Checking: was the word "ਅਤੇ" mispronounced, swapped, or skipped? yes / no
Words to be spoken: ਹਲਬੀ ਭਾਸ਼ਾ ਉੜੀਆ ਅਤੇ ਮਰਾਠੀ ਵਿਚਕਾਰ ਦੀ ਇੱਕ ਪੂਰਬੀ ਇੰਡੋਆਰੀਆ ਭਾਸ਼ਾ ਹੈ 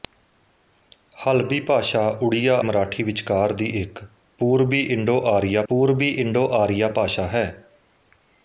yes